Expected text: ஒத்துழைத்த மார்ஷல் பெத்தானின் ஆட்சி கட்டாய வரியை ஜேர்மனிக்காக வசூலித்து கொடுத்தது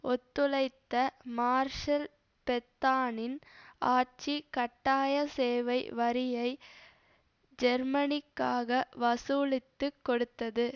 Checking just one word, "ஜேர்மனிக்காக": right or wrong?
right